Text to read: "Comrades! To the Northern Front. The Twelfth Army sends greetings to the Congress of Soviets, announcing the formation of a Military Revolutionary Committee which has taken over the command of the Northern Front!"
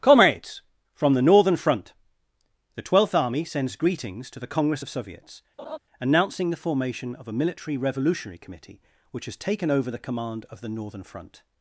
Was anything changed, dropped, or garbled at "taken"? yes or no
no